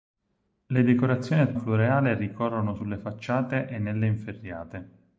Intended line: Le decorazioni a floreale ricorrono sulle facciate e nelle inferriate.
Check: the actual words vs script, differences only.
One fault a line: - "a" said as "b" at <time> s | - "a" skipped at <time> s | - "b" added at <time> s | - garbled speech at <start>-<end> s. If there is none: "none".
none